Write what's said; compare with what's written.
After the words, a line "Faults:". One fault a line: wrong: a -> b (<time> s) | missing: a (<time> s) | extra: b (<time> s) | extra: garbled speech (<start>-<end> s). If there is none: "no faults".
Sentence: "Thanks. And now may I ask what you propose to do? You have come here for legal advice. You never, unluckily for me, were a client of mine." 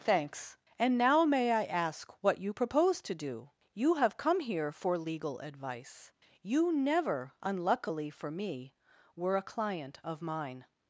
"Thanks. And now may I ask what you propose to do? You have come here for legal advice. You never, unluckily for me, were a client of mine."
Faults:
no faults